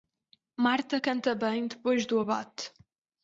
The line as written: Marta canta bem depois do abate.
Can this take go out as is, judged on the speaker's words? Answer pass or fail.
pass